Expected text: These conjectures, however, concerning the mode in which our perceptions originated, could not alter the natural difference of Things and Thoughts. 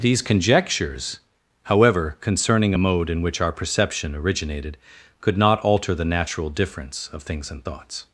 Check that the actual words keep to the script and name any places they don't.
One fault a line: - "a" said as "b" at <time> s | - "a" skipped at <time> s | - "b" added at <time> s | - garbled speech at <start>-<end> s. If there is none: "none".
- "the" said as "a" at 2.7 s
- "perceptions" said as "perception" at 3.5 s